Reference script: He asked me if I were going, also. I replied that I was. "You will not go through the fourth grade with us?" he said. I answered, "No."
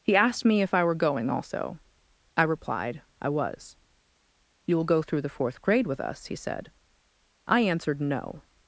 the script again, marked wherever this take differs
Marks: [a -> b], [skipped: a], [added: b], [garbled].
He asked me if I were going, also. I replied [skipped: that] I was. "You will [skipped: not] go through the fourth grade with us?" he said. I answered, "No."